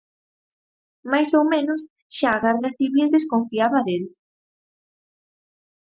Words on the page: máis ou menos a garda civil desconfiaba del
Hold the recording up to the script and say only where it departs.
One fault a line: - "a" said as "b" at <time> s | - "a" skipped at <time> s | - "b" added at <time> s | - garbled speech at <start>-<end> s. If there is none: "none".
- "xa" added at 2.2 s